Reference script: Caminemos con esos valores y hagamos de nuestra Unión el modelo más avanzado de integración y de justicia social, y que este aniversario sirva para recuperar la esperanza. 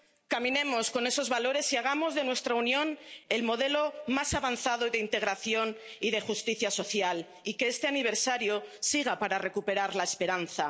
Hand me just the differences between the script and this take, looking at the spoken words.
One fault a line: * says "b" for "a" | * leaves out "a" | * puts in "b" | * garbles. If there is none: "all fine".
all fine